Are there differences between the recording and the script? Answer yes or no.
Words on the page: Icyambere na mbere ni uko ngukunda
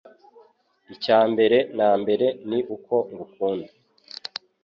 no